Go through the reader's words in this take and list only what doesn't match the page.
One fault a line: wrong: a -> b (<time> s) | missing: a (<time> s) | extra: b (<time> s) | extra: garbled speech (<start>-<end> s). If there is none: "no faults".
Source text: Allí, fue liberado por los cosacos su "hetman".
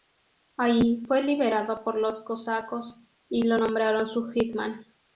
extra: y lo nombraron (3.3 s)